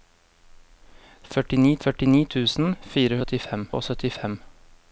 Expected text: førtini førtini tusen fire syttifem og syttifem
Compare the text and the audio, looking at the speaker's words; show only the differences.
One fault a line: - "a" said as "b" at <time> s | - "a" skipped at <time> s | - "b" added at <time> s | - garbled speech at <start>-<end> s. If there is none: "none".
none